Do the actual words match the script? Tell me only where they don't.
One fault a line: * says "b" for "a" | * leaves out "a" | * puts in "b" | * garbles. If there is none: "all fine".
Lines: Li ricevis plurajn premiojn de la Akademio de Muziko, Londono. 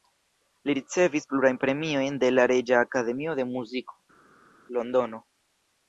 * puts in "Reĝa"